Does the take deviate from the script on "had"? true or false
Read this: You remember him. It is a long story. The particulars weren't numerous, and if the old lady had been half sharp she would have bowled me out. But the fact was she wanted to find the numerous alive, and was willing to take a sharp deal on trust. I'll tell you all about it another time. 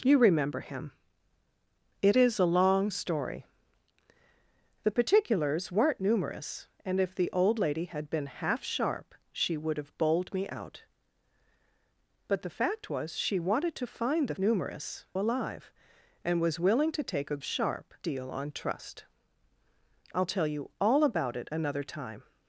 false